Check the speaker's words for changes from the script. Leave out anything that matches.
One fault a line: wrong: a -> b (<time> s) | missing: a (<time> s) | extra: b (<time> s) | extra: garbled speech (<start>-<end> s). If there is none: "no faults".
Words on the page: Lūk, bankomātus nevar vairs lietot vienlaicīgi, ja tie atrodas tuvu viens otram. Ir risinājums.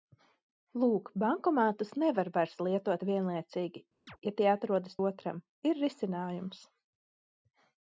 missing: tuvu viens (5.0 s)